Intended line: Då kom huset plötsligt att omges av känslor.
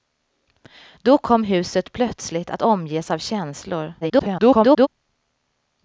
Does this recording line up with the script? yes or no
no